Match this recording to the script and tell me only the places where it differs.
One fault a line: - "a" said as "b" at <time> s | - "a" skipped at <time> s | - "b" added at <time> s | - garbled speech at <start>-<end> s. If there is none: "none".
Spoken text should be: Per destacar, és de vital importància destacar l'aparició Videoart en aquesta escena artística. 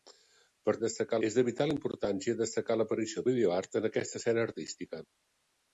none